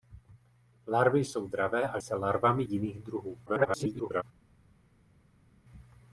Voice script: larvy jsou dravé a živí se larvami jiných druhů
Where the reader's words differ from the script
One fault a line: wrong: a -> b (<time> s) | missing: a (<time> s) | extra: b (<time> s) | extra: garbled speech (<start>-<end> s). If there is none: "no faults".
missing: živí (2.0 s)
extra: garbled speech (3.5-4.2 s)